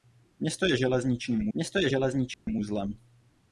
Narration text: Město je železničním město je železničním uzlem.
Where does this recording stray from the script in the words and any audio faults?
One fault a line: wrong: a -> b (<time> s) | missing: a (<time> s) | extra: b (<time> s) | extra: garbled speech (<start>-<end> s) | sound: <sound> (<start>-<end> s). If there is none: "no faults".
sound: dropout (2.3-2.5 s)